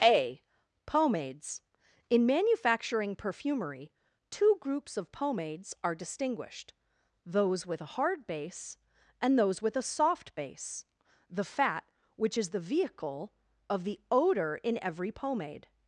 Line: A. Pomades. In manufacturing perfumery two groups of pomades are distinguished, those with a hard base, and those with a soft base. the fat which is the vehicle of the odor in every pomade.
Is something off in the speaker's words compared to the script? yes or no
no